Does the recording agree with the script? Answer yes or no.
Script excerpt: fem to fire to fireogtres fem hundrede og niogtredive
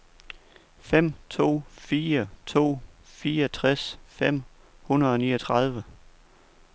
yes